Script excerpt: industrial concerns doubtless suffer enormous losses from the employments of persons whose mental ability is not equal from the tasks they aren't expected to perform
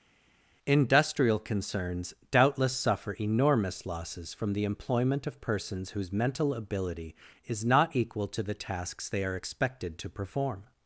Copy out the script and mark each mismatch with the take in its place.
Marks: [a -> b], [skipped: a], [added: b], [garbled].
industrial concerns doubtless suffer enormous losses from the [employments -> employment] of persons whose mental ability is not equal [from -> to] the tasks they [aren't -> are] expected to perform